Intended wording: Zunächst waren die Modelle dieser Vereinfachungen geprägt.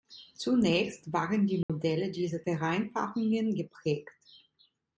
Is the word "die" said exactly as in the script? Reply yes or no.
yes